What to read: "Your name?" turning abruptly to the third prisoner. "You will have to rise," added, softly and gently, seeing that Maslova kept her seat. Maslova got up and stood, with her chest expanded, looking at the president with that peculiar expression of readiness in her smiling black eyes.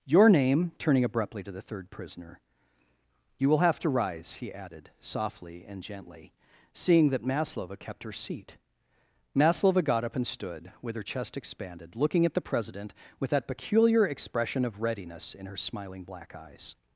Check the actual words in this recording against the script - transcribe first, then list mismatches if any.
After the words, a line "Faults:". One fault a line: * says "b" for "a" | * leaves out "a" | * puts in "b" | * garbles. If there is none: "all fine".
"Your name?" turning abruptly to the third prisoner. "You will have to rise," he added, softly and gently, seeing that Maslova kept her seat. Maslova got up and stood, with her chest expanded, looking at the president with that peculiar expression of readiness in her smiling black eyes.
Faults:
* puts in "he"